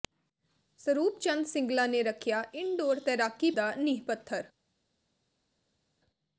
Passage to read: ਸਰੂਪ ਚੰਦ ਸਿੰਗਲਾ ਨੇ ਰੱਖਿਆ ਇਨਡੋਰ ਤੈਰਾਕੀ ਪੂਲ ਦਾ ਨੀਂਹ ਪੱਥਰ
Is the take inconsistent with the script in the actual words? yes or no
yes